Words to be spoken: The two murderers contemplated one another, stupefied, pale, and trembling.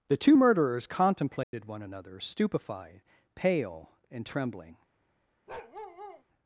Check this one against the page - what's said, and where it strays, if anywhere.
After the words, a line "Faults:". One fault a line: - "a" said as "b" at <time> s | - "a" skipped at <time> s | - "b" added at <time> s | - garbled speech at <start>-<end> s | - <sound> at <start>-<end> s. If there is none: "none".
The two murderers contemplated one another, stupefied, pale, and trembling.
Faults:
- dropout at 1.4-1.5 s
- bark at 5.5-6.2 s